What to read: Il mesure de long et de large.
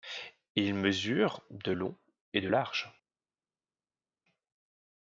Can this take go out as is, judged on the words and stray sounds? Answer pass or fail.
pass